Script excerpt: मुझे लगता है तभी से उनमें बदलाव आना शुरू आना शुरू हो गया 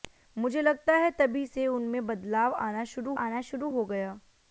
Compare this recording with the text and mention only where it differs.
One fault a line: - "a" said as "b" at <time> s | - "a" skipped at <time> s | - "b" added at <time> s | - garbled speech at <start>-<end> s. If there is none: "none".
none